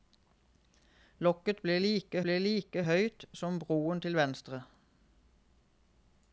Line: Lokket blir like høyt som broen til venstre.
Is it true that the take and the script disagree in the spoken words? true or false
true